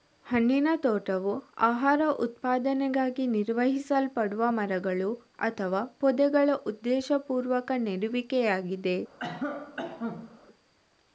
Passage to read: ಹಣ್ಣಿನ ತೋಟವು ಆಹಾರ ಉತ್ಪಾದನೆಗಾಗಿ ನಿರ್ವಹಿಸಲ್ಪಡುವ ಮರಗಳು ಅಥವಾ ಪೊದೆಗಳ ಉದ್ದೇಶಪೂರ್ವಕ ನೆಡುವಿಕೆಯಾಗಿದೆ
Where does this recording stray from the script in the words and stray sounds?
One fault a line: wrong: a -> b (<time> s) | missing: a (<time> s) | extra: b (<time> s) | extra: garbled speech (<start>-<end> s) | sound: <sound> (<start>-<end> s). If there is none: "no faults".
sound: cough (9.2-10.4 s)